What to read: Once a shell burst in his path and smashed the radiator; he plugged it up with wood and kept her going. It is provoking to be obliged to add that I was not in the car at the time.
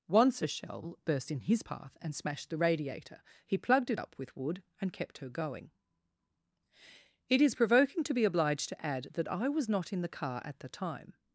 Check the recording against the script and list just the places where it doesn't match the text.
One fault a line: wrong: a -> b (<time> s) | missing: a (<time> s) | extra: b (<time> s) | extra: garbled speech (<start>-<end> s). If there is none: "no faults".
no faults